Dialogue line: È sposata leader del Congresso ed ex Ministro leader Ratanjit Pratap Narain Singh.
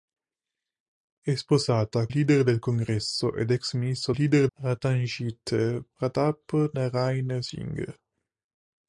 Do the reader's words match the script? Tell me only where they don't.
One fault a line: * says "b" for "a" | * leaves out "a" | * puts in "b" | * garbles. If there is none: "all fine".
all fine